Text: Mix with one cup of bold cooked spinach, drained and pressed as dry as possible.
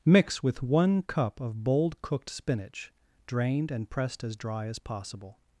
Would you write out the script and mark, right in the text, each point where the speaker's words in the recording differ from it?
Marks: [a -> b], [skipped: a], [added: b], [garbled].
Mix with one cup of bold cooked spinach, drained and pressed as dry as possible.